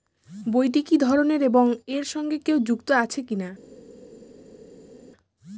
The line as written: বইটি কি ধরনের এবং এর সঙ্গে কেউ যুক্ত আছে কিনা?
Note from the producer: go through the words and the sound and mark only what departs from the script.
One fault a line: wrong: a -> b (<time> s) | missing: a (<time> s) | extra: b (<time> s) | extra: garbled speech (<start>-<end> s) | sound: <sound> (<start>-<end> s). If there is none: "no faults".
no faults